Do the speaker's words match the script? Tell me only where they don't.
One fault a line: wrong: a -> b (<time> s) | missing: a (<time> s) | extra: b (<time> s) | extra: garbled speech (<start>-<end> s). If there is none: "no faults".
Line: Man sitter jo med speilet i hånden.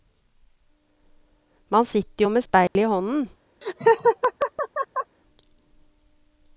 no faults